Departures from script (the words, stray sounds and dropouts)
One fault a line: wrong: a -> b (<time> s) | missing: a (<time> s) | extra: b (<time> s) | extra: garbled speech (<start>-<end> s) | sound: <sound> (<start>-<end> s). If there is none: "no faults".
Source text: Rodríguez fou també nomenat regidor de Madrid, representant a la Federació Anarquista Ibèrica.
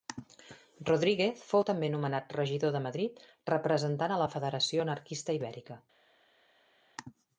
no faults